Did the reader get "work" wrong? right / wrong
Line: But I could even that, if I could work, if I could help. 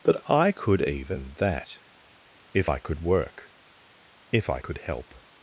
right